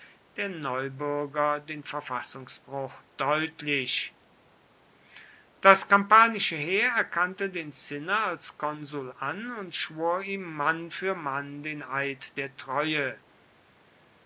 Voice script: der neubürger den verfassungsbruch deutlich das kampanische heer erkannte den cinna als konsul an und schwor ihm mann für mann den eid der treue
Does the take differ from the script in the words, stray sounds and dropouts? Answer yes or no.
no